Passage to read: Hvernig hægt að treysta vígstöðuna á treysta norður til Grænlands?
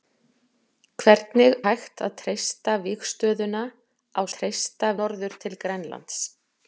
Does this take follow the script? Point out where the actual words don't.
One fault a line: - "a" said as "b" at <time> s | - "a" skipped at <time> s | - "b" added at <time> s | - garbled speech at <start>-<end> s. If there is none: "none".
none